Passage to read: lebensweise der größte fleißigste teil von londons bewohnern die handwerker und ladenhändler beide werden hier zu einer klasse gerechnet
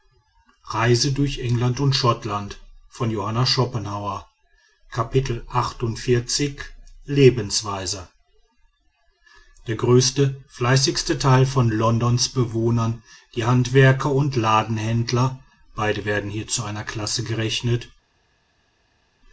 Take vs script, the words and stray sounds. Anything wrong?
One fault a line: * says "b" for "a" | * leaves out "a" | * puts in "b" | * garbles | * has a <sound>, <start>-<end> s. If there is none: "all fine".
all fine